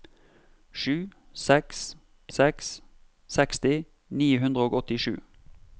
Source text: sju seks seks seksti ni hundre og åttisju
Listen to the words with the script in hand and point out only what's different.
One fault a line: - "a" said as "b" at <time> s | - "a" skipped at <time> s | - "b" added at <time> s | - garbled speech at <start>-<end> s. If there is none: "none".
none